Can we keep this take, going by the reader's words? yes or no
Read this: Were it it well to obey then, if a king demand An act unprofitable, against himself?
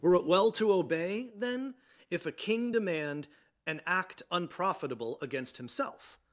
no